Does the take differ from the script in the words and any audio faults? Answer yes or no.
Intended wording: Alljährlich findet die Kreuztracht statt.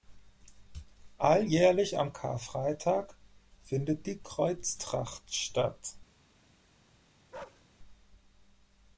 yes